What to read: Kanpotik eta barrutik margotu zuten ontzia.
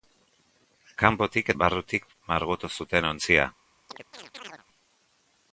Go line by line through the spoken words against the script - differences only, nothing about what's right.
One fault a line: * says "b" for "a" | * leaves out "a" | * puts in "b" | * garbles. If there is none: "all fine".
* leaves out "eta"